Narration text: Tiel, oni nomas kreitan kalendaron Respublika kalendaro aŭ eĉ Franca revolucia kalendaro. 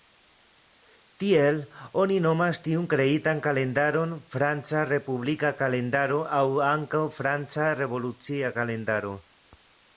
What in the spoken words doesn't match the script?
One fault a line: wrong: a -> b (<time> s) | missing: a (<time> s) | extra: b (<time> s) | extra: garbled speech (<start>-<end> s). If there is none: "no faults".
extra: tiun (2.7 s)
extra: Franca (4.4 s)
wrong: eĉ -> ankaŭ (6.7 s)